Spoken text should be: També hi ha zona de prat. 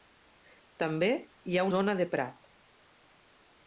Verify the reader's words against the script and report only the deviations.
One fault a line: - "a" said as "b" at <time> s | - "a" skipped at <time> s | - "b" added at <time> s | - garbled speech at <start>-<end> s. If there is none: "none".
none